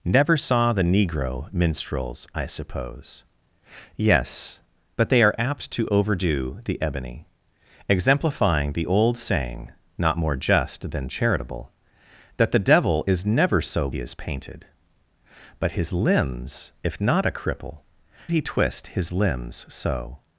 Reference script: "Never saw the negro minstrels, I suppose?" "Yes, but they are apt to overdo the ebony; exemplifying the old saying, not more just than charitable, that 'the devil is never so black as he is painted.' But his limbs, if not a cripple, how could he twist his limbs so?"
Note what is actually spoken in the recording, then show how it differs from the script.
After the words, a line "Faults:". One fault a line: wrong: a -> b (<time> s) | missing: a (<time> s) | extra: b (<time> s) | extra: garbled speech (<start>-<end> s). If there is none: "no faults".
"Never saw the negro minstrels, I suppose?" "Yes, but they are apt to overdo the ebony; exemplifying the old saying, not more just than charitable, that 'the devil is never so he is painted.' But his limbs, if not a cripple, he twist his limbs so?"
Faults:
missing: black as (13.9 s)
missing: how could (17.8 s)